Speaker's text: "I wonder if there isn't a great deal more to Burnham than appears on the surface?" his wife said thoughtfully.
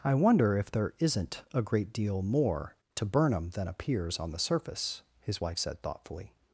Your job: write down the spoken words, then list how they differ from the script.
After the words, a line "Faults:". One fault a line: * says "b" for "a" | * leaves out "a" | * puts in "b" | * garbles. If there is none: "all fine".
"I wonder if there isn't a great deal more to Burnham than appears on the surface?" his wife said thoughtfully.
Faults:
all fine